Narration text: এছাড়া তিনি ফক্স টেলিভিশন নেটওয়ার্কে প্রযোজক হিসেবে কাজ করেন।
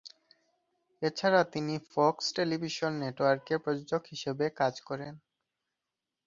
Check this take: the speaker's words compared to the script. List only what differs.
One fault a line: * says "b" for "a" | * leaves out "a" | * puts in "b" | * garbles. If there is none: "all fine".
all fine